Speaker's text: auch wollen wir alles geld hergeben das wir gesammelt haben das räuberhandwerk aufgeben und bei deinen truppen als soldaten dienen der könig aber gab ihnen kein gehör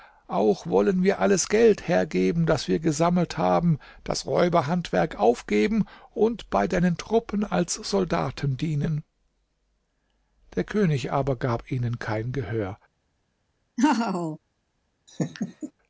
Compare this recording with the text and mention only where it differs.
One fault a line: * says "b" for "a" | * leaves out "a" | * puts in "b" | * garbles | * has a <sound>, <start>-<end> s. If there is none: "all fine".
* has a laugh, 13.8-14.4 s
* has a laugh, 15.1-15.7 s